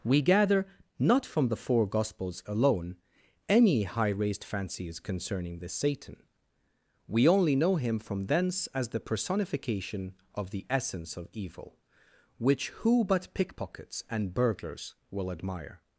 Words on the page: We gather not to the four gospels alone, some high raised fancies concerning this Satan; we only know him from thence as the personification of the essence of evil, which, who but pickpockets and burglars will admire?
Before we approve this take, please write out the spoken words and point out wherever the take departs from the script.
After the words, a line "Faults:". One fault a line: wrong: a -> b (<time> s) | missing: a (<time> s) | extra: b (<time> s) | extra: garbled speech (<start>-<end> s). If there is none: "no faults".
We gather not from the four gospels alone, any high raised fancies concerning this Satan; we only know him from thence as the personification of the essence of evil, which, who but pickpockets and burglars will admire?
Faults:
wrong: to -> from (1.2 s)
wrong: some -> any (3.5 s)